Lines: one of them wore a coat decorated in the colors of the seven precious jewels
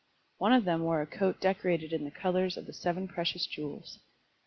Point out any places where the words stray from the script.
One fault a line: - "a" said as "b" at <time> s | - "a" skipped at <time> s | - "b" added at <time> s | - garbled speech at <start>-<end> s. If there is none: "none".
none